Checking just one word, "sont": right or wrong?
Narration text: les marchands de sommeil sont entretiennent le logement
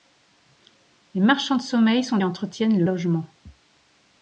right